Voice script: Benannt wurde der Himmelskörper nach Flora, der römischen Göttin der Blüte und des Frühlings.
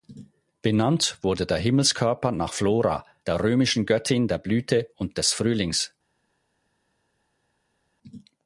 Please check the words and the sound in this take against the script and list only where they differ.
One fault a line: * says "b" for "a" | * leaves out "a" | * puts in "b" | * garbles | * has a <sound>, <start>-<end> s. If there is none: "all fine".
all fine